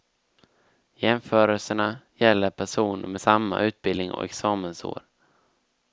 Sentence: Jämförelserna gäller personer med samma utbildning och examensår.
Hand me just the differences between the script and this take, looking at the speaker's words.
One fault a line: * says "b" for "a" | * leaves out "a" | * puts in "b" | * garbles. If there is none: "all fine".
all fine